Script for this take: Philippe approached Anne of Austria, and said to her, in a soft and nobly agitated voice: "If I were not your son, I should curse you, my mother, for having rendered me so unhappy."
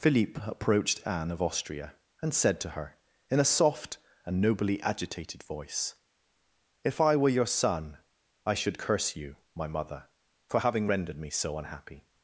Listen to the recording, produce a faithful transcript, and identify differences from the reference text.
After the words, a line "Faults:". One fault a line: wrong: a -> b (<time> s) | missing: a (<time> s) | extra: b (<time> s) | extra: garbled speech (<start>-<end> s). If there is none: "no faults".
Philippe approached Anne of Austria, and said to her, in a soft and nobly agitated voice: "If I were your son, I should curse you, my mother, for having rendered me so unhappy."
Faults:
missing: not (7.3 s)